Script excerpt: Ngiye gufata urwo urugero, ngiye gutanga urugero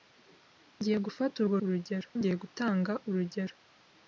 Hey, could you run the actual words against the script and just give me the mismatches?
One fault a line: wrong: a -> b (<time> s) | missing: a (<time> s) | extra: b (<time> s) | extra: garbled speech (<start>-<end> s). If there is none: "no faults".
no faults